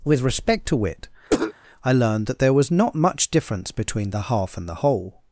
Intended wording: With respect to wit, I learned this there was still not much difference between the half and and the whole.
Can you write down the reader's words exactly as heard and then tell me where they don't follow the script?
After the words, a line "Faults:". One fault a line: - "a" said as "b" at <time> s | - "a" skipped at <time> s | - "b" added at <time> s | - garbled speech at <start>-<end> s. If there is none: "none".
With respect to wit, I learned that there was not much difference between the half and the whole.
Faults:
- "this" said as "that" at 2.3 s
- "still" skipped at 2.7 s
- "and" skipped at 4.7 s